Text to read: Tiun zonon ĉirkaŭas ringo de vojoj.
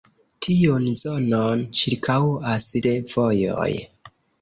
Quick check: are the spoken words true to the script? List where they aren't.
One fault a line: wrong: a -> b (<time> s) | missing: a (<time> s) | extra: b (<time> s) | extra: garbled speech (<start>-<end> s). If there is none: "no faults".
missing: ringo (2.7 s)